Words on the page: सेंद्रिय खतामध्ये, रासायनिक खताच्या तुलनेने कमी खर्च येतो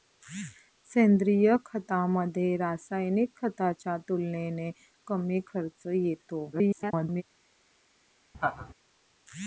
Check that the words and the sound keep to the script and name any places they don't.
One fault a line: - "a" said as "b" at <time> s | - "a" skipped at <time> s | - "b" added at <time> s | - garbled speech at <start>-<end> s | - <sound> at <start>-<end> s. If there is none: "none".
- garbled speech at 6.5-7.2 s
- laugh at 8.3-8.7 s